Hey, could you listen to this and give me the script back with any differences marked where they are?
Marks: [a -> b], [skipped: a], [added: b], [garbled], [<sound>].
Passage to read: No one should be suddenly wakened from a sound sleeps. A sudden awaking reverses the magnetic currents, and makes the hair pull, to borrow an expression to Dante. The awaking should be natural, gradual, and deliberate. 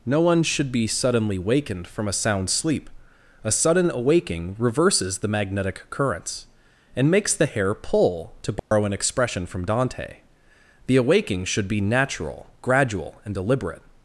No one should be suddenly wakened from a sound [sleeps. -> sleep] A sudden awaking reverses the magnetic currents, and makes the hair pull, to borrow [dropout] an expression [to -> from] Dante. The awaking should be natural, gradual, and deliberate.